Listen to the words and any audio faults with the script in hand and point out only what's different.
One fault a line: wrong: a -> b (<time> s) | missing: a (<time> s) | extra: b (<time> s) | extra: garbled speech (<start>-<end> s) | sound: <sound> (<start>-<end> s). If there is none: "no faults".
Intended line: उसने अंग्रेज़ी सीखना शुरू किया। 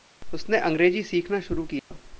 sound: dropout (1.8-1.9 s)